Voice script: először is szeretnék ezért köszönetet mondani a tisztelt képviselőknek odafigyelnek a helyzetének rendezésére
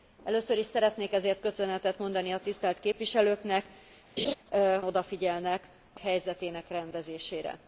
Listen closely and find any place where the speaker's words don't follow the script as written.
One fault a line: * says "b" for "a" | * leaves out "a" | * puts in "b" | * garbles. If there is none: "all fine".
all fine